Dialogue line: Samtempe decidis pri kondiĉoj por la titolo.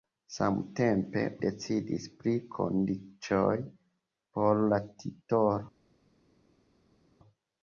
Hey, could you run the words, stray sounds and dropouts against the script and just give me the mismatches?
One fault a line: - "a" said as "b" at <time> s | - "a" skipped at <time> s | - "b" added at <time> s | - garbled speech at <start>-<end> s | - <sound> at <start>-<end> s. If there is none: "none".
none